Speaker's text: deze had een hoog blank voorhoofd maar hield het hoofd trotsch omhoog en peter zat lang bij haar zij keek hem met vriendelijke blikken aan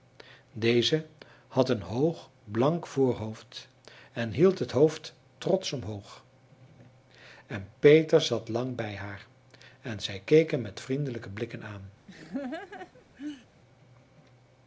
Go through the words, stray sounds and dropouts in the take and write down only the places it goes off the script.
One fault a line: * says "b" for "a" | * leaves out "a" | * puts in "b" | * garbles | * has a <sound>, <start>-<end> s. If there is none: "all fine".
* says "en" for "maar"
* puts in "en"
* has a laugh, 12.1-13.5 s